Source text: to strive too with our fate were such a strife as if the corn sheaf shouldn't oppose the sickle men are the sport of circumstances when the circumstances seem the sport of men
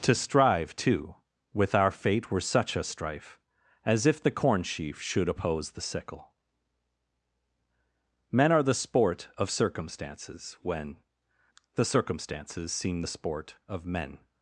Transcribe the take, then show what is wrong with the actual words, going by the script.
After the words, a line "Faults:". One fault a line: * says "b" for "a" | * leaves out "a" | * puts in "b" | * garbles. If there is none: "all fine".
to strive too with our fate were such a strife as if the corn sheaf should oppose the sickle men are the sport of circumstances when the circumstances seem the sport of men
Faults:
* says "should" for "shouldn't"